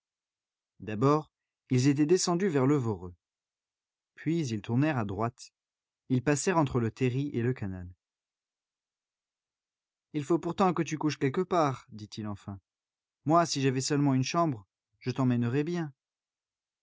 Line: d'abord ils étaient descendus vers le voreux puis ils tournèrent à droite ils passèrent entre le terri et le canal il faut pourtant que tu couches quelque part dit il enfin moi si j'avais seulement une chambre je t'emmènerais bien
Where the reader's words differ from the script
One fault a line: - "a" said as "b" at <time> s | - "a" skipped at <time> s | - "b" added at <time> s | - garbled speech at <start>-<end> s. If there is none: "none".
none